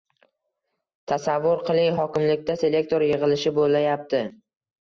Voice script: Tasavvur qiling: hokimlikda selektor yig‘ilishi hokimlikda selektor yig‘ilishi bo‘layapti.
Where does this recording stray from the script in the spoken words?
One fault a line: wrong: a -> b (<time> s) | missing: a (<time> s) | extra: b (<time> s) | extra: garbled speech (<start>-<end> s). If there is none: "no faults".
missing: hokimlikda selektor yig‘ilishi (3.6 s)